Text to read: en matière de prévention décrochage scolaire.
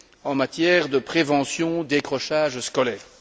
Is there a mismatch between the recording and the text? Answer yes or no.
no